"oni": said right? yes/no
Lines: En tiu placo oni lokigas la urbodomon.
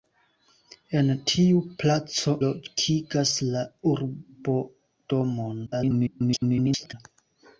no